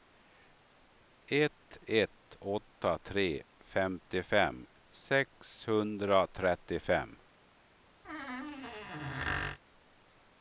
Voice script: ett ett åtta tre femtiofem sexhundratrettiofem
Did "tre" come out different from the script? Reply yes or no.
no